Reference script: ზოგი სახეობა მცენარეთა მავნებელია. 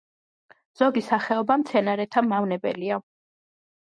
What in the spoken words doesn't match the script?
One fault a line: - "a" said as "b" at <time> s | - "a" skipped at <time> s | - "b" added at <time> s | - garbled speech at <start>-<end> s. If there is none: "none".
none